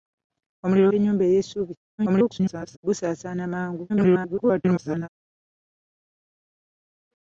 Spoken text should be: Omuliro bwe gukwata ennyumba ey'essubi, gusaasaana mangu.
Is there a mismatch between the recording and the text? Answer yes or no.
yes